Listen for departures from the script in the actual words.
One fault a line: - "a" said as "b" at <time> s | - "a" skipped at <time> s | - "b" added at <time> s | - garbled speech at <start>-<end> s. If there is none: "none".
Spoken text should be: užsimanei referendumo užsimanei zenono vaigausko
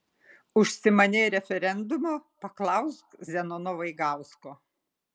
- "užsimanei" said as "paklausk" at 2.5 s